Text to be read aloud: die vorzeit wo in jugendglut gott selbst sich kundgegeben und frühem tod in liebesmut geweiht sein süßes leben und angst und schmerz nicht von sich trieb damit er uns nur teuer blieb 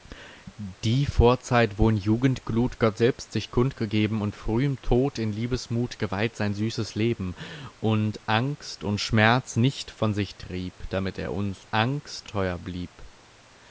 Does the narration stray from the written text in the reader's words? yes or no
yes